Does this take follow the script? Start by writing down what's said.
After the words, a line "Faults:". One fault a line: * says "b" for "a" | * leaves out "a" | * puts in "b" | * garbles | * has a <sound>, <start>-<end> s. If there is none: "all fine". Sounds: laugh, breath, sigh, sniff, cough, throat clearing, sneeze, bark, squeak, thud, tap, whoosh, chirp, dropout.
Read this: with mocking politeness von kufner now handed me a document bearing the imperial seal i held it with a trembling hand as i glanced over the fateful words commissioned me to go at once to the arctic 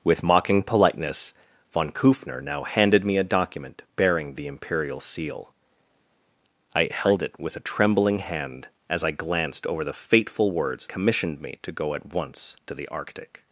with mocking politeness von kufner now handed me a document bearing the imperial seal i held it with a trembling hand as i glanced over the fateful words commissioned me to go at once to the arctic
Faults:
all fine